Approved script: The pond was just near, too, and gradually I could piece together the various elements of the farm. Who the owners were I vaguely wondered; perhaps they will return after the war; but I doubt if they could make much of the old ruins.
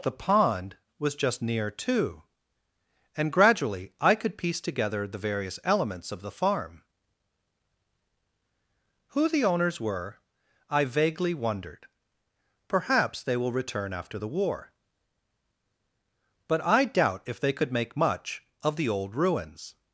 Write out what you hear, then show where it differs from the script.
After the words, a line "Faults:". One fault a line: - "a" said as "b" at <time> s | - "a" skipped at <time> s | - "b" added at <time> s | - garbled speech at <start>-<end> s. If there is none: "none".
The pond was just near, too, and gradually I could piece together the various elements of the farm. Who the owners were I vaguely wondered; perhaps they will return after the war; but I doubt if they could make much of the old ruins.
Faults:
none